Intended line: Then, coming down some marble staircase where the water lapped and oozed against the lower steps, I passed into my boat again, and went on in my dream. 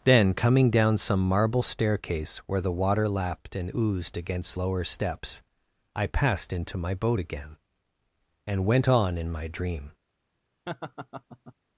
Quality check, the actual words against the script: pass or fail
fail